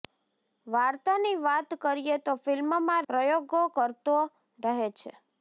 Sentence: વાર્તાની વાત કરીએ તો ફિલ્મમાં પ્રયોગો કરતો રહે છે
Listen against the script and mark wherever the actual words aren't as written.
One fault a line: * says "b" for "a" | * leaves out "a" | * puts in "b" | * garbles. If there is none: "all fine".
all fine